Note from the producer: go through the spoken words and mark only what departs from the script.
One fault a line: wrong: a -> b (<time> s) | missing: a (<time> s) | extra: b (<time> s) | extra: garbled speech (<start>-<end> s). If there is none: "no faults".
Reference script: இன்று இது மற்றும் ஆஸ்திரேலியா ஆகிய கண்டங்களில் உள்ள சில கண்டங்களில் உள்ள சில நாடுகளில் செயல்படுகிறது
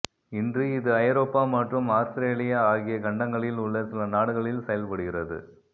extra: ஐரோப்பா (1.0 s)
missing: கண்டங்களில் உள்ள சில (4.1 s)